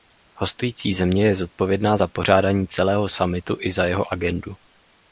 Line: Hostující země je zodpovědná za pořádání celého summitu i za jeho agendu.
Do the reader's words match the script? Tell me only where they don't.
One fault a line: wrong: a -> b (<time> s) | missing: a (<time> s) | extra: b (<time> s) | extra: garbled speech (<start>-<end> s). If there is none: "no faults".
no faults